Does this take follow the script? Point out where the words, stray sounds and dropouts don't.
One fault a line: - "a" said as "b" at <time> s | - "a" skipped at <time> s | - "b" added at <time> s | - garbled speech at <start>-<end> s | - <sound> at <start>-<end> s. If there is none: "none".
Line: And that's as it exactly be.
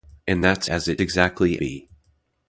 none